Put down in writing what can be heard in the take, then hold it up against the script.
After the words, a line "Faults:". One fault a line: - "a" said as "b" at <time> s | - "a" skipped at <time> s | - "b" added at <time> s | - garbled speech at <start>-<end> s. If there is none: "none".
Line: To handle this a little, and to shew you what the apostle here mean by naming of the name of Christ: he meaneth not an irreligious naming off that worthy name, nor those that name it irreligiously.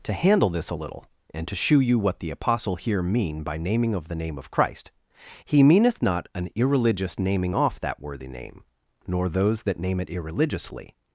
To handle this a little, and to shew you what the apostle here mean by naming of the name of Christ: he meaneth not an irreligious naming off that worthy name, nor those that name it irreligiously.
Faults:
none